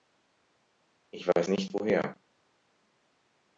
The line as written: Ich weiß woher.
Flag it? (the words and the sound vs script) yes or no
yes